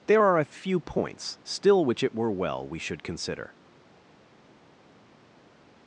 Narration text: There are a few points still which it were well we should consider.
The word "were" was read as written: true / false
true